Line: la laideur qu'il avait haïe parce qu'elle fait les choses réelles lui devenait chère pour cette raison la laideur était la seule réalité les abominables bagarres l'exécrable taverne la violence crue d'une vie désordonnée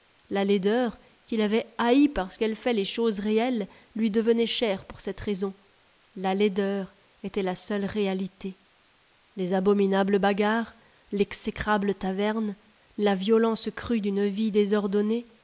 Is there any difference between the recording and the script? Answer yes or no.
no